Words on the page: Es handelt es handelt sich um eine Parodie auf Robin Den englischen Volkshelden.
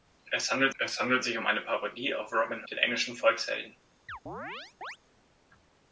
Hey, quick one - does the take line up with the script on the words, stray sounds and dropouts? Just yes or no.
no